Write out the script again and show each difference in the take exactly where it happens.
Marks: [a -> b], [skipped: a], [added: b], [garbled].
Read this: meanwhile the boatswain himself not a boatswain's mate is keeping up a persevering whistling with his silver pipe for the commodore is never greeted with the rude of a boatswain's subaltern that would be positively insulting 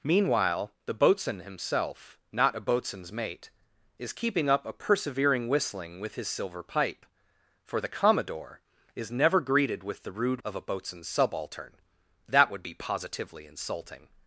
meanwhile the boatswain himself not a boatswain's mate is keeping up a persevering whistling with his silver pipe for the commodore is never greeted with the rude of a boatswain's subaltern that would be positively insulting